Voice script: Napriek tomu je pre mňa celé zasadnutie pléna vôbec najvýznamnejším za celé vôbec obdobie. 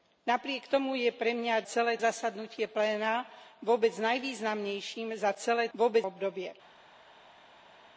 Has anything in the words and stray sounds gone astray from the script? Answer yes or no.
no